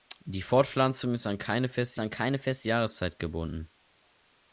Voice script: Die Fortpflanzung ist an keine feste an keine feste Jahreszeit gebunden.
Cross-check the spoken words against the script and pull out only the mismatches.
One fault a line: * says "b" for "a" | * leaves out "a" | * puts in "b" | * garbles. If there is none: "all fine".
all fine